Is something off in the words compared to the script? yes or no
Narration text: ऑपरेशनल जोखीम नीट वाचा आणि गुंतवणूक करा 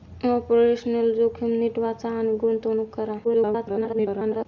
yes